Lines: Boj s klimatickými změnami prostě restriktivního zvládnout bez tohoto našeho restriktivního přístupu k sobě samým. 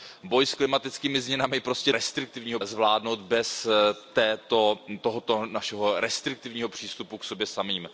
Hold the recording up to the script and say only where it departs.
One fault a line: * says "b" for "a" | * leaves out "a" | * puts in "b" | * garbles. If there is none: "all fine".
all fine